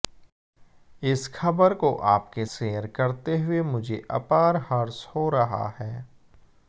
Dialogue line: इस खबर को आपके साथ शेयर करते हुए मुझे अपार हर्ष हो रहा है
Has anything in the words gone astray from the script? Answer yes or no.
yes